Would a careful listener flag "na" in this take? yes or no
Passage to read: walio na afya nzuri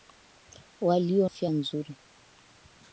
yes